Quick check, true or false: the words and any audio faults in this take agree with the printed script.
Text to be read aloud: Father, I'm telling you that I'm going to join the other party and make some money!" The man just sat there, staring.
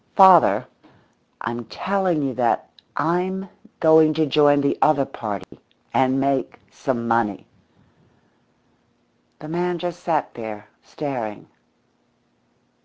false